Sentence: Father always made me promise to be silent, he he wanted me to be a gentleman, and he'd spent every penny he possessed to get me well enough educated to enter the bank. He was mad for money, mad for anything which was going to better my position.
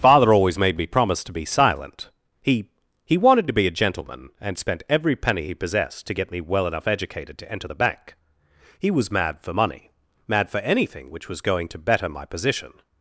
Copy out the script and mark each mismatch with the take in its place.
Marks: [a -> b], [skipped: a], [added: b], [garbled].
Father always made me promise to be silent, he he wanted [skipped: me] to be a gentleman, and [skipped: he'd] spent every penny he possessed to get me well enough educated to enter the bank. He was mad for money, mad for anything which was going to better my position.